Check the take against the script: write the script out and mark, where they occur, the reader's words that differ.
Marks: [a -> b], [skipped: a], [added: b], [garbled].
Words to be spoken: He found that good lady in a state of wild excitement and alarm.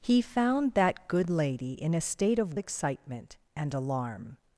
He found that good lady in a state of [skipped: wild] excitement and alarm.